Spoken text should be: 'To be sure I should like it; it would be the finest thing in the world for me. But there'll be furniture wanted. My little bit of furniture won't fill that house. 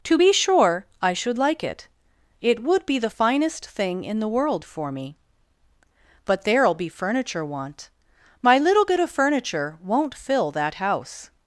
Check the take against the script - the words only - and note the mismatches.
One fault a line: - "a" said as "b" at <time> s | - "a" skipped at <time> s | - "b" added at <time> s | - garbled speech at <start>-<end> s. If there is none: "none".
- "wanted" said as "want" at 7.4 s